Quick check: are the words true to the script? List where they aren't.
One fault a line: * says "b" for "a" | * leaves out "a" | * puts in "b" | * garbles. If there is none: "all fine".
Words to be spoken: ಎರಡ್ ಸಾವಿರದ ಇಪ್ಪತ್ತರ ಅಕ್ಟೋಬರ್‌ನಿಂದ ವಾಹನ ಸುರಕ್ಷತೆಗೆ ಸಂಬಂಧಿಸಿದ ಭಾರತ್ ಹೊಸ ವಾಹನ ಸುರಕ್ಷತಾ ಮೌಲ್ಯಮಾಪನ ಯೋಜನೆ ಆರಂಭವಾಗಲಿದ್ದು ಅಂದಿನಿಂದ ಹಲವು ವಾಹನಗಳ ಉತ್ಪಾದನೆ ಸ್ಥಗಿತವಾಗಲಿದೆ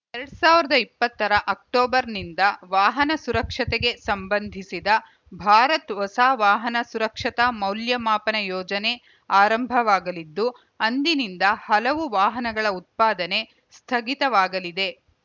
all fine